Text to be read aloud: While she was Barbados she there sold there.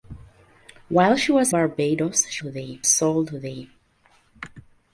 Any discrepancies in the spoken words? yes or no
no